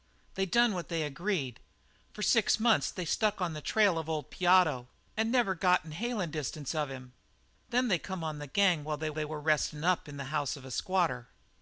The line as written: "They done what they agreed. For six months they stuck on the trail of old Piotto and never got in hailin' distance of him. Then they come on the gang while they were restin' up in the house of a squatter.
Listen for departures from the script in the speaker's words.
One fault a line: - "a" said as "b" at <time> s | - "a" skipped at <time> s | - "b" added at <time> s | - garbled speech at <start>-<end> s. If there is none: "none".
- "they" added at 9.1 s